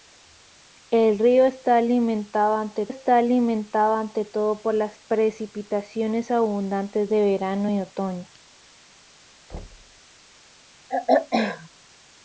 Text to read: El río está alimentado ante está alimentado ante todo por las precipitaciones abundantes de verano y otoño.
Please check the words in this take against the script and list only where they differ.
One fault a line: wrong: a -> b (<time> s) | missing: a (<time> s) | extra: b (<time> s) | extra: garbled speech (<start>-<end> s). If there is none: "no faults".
no faults